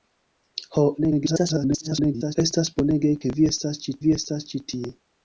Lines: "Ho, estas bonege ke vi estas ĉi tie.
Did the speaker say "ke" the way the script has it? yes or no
yes